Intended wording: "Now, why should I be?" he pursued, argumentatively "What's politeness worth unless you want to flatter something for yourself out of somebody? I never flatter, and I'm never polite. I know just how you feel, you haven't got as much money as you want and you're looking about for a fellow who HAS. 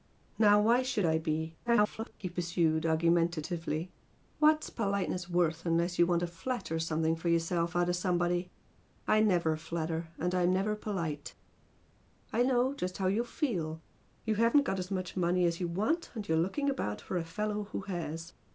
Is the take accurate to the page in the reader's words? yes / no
no